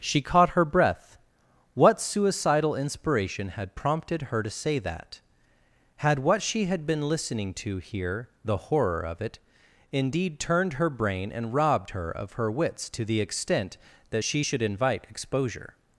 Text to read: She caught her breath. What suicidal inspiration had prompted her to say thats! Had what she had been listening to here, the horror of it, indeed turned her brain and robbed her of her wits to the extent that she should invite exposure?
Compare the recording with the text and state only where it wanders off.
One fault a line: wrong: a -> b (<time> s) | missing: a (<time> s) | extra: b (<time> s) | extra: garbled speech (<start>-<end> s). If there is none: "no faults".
wrong: thats -> that (4.8 s)